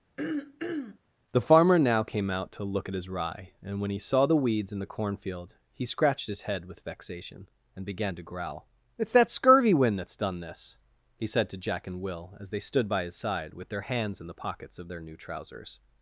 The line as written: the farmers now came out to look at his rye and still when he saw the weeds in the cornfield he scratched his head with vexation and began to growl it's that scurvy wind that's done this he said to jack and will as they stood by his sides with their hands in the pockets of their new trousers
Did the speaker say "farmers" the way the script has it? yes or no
no